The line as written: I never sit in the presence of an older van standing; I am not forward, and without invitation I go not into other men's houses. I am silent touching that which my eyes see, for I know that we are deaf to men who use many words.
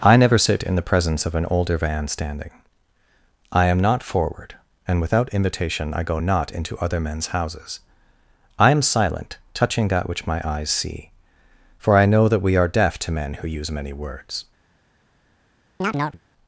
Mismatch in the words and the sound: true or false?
true